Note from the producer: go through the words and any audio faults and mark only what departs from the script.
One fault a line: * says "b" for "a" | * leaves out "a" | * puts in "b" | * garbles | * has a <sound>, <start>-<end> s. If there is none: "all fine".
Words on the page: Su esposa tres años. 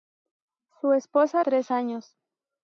all fine